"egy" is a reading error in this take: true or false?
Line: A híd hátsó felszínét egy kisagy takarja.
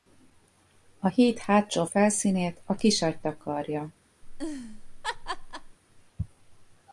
true